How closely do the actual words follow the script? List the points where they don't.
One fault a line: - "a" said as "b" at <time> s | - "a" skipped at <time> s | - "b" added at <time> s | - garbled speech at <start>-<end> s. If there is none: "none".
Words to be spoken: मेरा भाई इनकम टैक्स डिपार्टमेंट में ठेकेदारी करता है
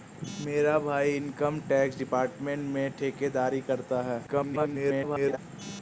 - garbled speech at 4.3-5.4 s